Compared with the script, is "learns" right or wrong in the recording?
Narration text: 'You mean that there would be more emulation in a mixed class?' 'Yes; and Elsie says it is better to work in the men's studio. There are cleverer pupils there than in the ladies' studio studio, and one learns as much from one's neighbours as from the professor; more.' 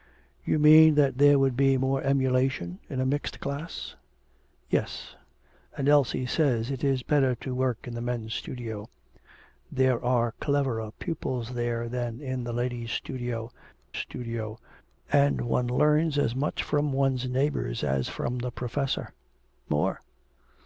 right